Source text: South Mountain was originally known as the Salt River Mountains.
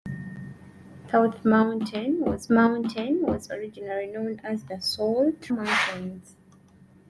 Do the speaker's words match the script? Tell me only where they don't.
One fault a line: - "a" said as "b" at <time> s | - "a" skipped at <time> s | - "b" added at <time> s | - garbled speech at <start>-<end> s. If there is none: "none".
- "Mountain was" added at 2.5 s
- "River" skipped at 5.5 s